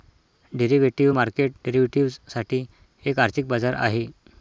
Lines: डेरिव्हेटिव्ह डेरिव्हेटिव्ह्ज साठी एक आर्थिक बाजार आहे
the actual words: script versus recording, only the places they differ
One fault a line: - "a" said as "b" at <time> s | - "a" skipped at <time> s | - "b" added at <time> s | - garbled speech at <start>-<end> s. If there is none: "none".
- "मार्केट" added at 1.1 s